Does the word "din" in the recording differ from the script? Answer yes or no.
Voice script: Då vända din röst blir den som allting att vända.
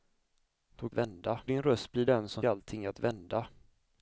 no